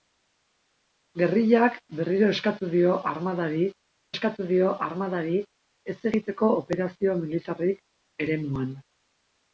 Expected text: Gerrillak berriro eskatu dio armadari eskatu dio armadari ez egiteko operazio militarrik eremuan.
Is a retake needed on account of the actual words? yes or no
no